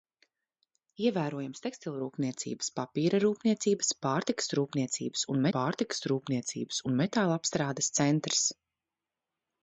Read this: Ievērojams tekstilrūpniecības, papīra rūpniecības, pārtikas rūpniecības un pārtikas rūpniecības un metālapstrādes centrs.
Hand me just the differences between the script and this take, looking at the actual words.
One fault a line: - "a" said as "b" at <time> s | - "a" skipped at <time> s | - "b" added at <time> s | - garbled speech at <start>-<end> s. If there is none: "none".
none